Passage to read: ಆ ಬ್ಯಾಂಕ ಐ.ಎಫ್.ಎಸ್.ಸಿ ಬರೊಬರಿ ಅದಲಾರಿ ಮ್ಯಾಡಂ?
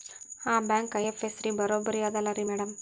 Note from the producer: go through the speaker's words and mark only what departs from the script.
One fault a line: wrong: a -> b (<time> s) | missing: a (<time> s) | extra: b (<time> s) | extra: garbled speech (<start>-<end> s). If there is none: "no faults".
no faults